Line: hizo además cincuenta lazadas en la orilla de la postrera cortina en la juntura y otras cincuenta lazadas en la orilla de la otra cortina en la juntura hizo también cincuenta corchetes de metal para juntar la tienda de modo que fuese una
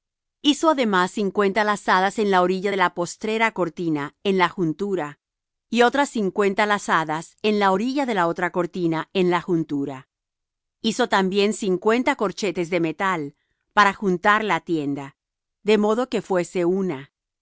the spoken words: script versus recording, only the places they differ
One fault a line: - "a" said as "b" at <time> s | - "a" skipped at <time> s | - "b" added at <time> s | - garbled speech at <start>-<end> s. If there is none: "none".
none